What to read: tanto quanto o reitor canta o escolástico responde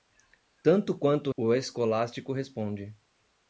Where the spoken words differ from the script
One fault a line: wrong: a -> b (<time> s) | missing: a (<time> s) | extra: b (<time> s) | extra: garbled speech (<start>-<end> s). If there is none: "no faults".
missing: reitor canta (1.3 s)